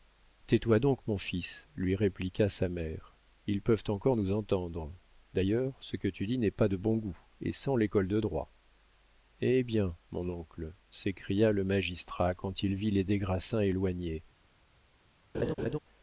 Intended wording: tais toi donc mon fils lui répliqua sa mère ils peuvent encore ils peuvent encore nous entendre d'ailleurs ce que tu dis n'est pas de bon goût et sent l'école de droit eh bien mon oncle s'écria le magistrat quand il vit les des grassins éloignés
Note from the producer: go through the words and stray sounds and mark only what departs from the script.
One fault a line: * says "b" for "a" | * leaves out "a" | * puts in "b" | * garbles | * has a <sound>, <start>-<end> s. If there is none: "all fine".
* leaves out "ils peuvent encore"
* has a laugh, 15.3-15.8 s